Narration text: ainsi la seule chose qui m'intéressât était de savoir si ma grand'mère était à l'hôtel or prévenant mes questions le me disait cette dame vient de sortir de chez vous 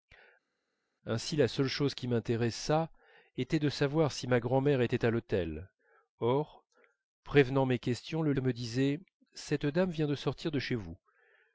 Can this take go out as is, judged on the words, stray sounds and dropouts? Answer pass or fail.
pass